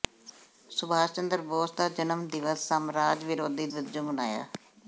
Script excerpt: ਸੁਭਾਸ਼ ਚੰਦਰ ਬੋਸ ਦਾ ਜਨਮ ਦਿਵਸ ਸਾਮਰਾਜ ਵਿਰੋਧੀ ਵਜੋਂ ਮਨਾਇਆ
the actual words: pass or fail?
pass